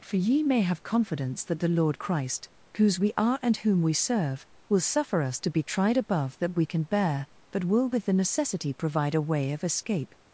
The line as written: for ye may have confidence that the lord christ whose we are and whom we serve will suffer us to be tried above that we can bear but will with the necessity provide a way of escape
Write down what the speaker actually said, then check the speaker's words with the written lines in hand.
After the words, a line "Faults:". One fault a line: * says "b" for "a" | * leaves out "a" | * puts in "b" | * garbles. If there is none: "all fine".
for ye may have confidence that the lord christ whose we are and whom we serve will suffer us to be tried above that we can bear but will with the necessity provide a way of escape
Faults:
all fine